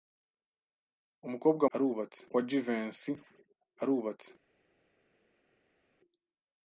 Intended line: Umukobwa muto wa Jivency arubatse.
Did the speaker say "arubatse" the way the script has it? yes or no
yes